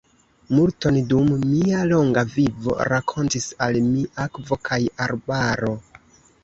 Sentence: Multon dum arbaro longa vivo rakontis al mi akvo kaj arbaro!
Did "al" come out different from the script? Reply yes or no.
no